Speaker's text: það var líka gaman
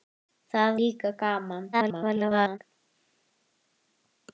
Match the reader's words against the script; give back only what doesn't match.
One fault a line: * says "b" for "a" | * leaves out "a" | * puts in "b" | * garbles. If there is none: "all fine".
* leaves out "var"
* garbles